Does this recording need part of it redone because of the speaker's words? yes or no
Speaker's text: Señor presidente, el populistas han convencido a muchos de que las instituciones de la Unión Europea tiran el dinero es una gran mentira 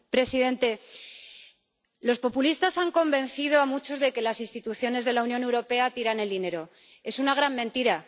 yes